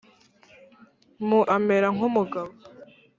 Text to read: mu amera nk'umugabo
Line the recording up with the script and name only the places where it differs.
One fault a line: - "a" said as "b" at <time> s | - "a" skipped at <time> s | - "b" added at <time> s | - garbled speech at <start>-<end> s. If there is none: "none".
none